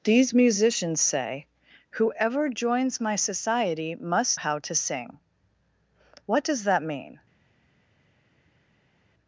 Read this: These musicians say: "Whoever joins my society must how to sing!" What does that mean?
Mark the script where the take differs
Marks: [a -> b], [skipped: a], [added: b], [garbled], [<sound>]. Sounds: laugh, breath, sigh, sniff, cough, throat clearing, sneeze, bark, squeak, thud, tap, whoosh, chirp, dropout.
These musicians say: "Whoever joins my society must how to sing!" What does that mean?